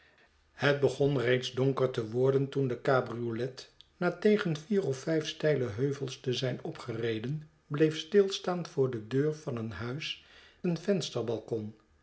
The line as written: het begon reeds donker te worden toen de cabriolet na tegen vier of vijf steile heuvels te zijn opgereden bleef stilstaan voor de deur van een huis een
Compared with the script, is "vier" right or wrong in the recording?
right